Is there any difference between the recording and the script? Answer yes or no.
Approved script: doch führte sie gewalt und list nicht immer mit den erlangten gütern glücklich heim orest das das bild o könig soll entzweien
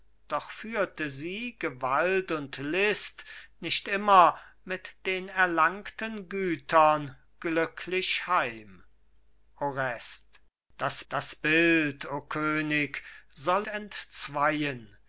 no